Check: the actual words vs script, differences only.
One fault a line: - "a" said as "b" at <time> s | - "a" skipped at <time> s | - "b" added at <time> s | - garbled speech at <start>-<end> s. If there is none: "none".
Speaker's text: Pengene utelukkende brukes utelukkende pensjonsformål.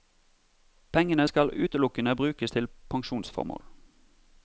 - "skal" added at 1.3 s
- "utelukkende" said as "til" at 2.5 s